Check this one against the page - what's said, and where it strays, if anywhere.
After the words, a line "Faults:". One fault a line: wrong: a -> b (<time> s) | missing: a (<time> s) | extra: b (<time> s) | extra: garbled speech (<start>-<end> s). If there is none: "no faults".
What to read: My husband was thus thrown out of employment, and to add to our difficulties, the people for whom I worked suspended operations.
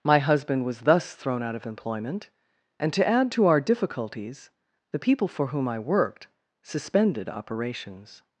My husband was thus thrown out of employment, and to add to our difficulties, the people for whom I worked suspended operations.
Faults:
no faults